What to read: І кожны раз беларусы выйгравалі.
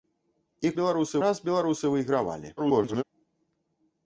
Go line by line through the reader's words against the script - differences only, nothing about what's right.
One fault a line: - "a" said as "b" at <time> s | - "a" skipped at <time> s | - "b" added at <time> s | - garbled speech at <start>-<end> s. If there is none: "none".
- "кожны" said as "беларусы" at 0.8 s
- garbled speech at 2.6-3.0 s